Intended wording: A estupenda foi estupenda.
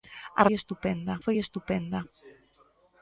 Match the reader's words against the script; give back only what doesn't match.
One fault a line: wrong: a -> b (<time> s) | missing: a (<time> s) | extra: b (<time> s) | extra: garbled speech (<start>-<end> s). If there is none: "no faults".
no faults